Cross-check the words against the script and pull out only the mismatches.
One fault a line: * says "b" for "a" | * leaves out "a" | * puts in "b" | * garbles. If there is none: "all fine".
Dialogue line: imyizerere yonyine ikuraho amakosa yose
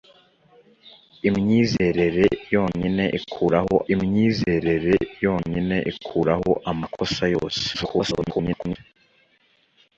* puts in "imyizerere yonyine ikuraho"
* garbles